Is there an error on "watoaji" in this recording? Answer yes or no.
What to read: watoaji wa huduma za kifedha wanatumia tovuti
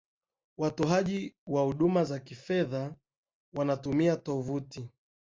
no